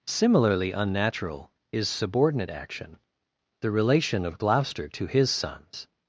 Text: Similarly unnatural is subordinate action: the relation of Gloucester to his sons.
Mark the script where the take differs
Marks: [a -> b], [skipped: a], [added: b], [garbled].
Similarly unnatural is subordinate action: the relation of Gloucester to his sons.